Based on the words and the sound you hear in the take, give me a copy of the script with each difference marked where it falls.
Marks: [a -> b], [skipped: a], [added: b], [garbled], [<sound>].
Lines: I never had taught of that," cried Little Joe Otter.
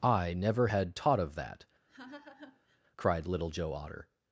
I never had taught of that," [laugh] cried Little Joe Otter.